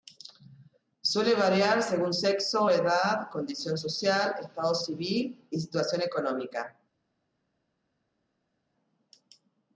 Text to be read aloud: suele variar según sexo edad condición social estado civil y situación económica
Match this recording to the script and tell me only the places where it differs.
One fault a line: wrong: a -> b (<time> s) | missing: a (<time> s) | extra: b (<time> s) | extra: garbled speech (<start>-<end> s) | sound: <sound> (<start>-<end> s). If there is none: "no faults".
no faults